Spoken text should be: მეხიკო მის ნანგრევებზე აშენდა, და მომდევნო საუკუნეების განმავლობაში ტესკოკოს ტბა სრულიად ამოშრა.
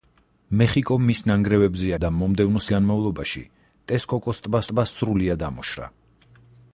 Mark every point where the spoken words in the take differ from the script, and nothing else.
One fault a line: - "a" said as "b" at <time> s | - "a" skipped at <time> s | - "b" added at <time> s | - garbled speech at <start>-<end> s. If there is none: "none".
- "აშენდა" skipped at 1.9 s
- "საუკუნეების" skipped at 2.6 s
- "ტბა" added at 4.7 s